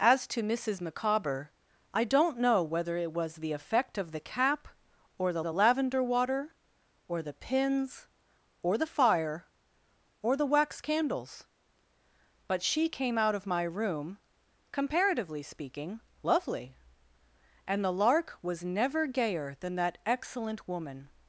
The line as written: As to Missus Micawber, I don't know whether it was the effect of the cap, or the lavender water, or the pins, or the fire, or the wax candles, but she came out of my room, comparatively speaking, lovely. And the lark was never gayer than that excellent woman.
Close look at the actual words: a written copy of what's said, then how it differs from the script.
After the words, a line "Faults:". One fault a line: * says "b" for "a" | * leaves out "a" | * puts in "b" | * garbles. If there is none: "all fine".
As to Missus Micawber, I don't know whether it was the effect of the cap, or the the lavender water, or the pins, or the fire, or the wax candles, but she came out of my room, comparatively speaking, lovely. And the lark was never gayer than that excellent woman.
Faults:
* puts in "the"